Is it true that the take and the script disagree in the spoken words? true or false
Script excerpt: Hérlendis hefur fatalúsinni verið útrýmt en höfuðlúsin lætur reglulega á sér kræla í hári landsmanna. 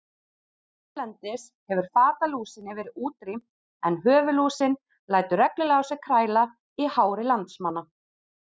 false